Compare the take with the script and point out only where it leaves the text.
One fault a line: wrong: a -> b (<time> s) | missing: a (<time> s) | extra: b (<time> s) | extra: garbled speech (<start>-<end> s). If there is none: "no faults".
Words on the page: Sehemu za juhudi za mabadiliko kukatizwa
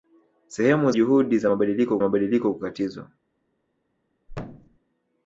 missing: za (0.9 s)
extra: mabadiliko (2.0 s)